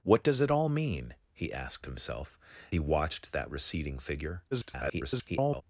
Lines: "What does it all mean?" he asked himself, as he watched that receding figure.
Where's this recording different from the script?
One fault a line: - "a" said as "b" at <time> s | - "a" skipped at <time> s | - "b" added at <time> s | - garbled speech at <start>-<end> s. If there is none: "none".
- "as" skipped at 2.4 s
- garbled speech at 4.5-5.6 s